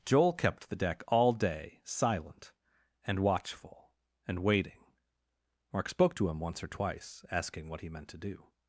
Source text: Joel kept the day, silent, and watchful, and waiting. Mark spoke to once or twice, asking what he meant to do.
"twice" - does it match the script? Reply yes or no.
yes